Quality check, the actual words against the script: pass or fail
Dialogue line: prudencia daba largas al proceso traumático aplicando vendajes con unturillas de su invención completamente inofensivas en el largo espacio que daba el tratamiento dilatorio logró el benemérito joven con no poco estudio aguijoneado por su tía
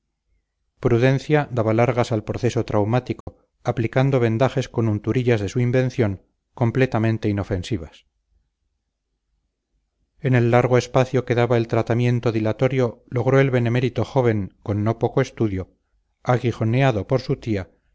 pass